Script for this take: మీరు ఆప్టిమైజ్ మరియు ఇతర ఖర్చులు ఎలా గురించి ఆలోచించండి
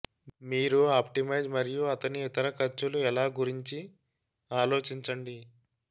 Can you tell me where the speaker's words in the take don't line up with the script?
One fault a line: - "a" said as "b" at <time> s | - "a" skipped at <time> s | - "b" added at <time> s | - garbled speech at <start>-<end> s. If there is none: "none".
- "అతని" added at 1.9 s